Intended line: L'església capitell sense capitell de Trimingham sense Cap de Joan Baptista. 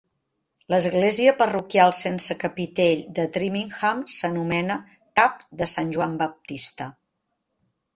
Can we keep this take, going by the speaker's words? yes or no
no